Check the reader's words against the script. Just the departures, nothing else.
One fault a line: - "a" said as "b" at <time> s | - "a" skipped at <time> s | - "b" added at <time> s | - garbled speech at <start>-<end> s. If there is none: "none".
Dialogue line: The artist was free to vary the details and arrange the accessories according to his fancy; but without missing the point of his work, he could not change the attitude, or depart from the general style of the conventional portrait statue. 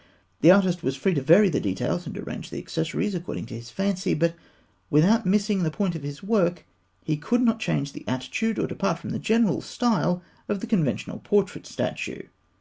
none